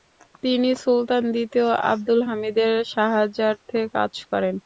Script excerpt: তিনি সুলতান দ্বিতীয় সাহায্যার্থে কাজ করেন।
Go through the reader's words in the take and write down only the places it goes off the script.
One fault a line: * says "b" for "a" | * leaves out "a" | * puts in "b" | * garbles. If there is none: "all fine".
* puts in "আবদুল হামিদের"